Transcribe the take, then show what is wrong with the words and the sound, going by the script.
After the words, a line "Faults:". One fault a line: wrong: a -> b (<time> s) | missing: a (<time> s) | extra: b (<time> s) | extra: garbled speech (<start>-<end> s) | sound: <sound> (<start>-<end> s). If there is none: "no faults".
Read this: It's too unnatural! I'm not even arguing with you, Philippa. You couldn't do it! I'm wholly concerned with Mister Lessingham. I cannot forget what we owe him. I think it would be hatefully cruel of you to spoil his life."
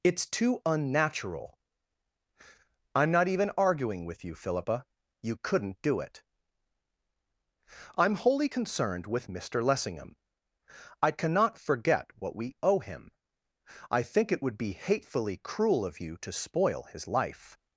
It's too unnatural! I'm not even arguing with you, Philippa. You couldn't do it! I'm wholly concerned with Mister Lessingham. I cannot forget what we owe him. I think it would be hatefully cruel of you to spoil his life."
Faults:
no faults